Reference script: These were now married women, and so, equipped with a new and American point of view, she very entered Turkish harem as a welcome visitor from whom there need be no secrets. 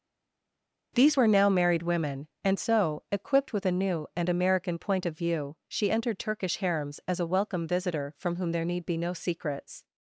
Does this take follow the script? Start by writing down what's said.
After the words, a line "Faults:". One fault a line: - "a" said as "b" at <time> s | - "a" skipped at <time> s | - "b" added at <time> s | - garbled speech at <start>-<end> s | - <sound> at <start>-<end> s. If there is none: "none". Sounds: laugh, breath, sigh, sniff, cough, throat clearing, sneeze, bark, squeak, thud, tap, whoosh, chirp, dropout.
These were now married women, and so, equipped with a new and American point of view, she entered Turkish harems as a welcome visitor from whom there need be no secrets.
Faults:
- "very" skipped at 5.9 s
- "harem" said as "harems" at 6.6 s